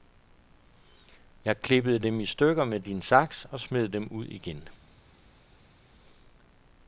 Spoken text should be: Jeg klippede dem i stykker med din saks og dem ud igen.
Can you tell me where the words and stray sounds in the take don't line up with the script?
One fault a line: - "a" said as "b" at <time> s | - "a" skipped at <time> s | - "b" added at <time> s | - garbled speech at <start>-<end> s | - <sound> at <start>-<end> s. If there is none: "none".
- "smed" added at 3.6 s